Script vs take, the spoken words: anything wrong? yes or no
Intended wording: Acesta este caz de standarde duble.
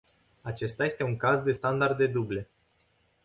yes